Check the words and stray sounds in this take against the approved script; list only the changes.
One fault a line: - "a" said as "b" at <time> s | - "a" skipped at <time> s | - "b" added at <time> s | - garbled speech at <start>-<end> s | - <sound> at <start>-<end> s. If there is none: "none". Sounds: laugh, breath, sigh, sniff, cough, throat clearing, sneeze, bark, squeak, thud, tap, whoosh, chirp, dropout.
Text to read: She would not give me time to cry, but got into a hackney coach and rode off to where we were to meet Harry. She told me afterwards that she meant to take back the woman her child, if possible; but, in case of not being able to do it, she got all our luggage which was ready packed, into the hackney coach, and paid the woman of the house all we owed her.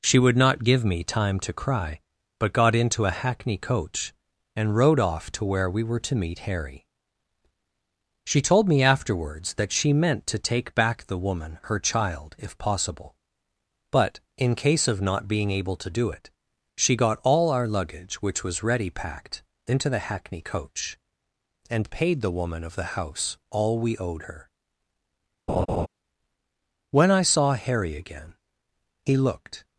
- laugh at 25.5-25.9 s
- "When I saw Harry again he looked" added at 26.9 s